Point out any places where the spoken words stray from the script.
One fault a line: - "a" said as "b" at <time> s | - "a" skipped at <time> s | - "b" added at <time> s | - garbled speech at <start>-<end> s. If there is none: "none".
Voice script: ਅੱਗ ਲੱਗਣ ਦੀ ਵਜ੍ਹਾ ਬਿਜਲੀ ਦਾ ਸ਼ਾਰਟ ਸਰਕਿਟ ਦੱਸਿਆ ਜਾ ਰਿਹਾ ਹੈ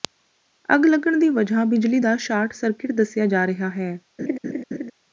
none